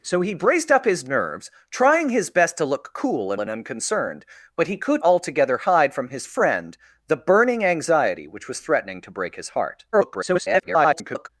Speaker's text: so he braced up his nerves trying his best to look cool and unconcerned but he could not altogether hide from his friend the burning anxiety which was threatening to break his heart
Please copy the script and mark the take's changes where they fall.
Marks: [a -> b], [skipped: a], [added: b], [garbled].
so he braced up his nerves trying his best to look cool and [added: and] unconcerned but he could [skipped: not] altogether hide from his friend the burning anxiety which was threatening to break his heart [garbled]